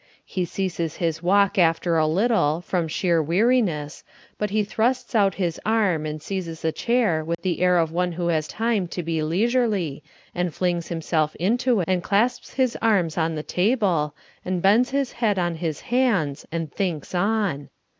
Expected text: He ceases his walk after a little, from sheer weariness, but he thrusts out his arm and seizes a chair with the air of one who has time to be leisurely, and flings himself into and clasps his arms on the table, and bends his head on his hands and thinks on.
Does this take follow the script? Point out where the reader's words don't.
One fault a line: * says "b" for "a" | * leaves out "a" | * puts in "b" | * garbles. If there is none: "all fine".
all fine